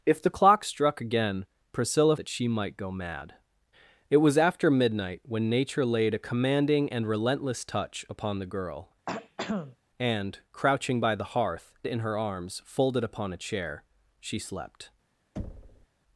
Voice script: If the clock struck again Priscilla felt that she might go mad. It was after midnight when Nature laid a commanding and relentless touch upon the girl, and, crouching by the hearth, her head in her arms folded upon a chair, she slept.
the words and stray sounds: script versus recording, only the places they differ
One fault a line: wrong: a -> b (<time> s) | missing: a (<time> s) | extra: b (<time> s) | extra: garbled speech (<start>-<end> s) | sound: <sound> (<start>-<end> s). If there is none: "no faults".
missing: felt (2.2 s)
sound: throat clearing (9.1-9.8 s)
missing: her head (11.7 s)
sound: thud (15.4-15.9 s)